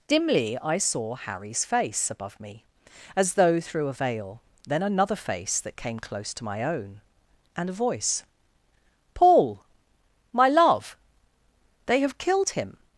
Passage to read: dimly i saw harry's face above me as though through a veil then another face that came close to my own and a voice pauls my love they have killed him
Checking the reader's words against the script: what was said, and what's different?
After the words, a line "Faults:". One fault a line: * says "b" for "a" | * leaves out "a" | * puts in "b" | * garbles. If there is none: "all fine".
dimly i saw harry's face above me as though through a veil then another face that came close to my own and a voice paul my love they have killed him
Faults:
* says "paul" for "pauls"